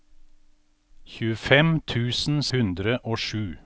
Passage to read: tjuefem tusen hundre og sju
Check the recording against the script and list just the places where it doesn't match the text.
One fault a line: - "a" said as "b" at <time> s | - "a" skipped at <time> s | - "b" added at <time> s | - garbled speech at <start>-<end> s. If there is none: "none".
none